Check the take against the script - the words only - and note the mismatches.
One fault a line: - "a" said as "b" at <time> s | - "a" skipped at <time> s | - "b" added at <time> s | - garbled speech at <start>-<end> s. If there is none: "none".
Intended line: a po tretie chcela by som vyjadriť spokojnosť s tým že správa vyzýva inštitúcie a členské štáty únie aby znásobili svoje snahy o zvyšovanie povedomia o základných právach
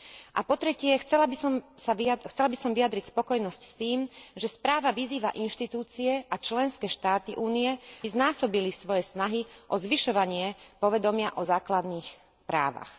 - "aby" skipped at 7.8 s